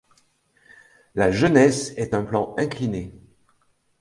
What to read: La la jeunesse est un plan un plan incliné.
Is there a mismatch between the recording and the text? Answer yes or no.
yes